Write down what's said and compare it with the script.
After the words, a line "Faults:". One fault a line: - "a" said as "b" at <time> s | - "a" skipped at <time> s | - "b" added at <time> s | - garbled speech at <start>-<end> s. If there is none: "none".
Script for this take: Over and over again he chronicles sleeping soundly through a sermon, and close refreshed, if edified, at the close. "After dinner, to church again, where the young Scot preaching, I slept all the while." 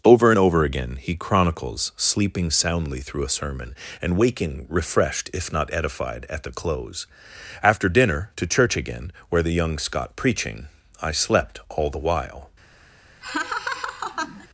Over and over again he chronicles sleeping soundly through a sermon, and waking refreshed, if not edified, at the close. "After dinner, to church again, where the young Scot preaching, I slept all the while."
Faults:
- "close" said as "waking" at 4.2 s
- "not" added at 5.5 s